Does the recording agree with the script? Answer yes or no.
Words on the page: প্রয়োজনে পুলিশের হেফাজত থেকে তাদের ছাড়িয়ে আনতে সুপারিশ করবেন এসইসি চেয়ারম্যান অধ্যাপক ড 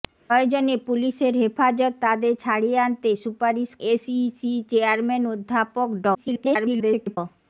no